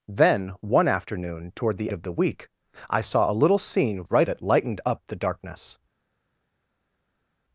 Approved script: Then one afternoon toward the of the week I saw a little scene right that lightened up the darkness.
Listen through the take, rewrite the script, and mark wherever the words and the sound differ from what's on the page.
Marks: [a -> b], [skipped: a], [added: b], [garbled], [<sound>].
Then one afternoon toward the of the week I saw a little scene right that lightened up the darkness.